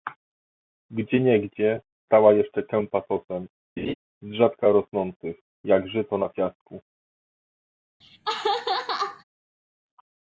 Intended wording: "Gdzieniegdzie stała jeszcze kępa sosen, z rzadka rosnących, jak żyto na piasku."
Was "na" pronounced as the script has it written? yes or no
yes